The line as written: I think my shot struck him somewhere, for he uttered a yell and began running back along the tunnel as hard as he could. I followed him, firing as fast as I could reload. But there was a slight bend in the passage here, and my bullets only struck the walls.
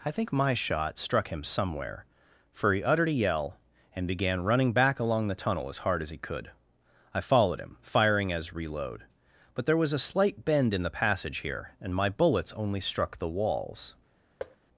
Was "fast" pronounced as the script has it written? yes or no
no